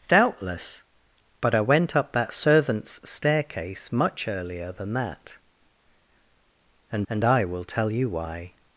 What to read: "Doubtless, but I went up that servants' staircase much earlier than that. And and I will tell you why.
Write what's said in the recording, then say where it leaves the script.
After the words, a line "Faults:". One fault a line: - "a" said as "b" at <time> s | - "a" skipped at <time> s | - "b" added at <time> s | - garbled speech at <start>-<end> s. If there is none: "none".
"Doubtless, but I went up that servants' staircase much earlier than that. And and I will tell you why.
Faults:
none